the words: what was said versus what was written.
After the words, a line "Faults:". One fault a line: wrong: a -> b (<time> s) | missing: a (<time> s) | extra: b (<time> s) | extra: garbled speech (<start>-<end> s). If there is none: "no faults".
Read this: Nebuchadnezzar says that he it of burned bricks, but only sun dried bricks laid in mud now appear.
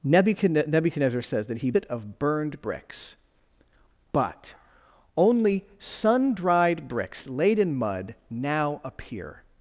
Nebuchadnezzar says that he it of burned bricks, but only sun dried bricks laid in mud now appear.
Faults:
no faults